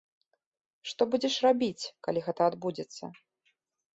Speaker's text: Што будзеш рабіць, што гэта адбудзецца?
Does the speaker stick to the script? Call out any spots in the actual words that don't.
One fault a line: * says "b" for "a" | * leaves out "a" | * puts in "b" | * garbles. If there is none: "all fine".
* says "калі" for "што"